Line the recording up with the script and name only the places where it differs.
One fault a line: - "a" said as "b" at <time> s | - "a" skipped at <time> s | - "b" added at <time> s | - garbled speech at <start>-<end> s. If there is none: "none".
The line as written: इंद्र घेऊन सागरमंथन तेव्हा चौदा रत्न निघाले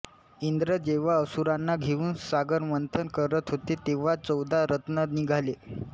- "जेव्हा असुरांना" added at 0.8 s
- "करत होते" added at 3.1 s